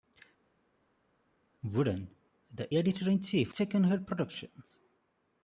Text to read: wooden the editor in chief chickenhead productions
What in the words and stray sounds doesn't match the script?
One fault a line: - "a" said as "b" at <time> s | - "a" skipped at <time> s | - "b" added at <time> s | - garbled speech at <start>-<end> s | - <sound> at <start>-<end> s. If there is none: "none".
none